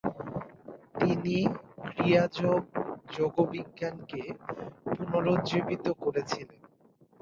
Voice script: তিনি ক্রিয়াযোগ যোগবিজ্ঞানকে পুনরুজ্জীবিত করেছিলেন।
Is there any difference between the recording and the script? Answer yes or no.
no